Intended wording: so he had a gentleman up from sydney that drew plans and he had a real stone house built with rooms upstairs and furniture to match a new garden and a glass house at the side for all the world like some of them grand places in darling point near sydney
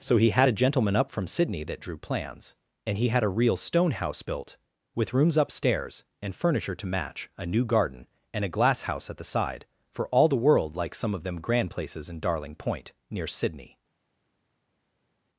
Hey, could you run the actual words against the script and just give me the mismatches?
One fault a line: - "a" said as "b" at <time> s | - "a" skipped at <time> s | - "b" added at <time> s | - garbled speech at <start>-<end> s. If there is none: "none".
none